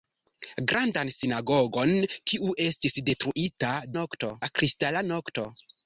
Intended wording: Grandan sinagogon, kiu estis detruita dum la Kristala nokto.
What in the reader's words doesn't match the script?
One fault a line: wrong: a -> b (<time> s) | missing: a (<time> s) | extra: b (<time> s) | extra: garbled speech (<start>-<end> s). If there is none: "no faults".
wrong: dum -> nokto (4.0 s)